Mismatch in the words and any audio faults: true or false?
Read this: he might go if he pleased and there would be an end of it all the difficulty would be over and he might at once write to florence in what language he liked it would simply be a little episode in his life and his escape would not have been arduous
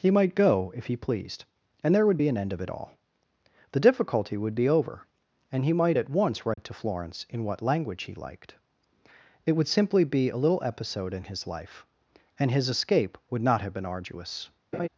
true